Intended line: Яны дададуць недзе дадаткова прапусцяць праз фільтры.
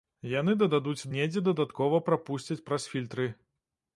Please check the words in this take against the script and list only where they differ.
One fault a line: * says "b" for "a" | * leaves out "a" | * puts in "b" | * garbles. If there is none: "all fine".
all fine